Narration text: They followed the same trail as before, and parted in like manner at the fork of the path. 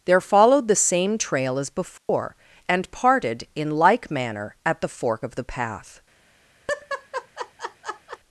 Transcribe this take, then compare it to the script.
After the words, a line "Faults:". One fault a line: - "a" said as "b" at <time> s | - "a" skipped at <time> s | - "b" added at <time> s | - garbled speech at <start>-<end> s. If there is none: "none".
There followed the same trail as before, and parted in like manner at the fork of the path.
Faults:
- "They" said as "There" at 0.1 s